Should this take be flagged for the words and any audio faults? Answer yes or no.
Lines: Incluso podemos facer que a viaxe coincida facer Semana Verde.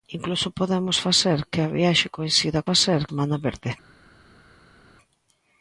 no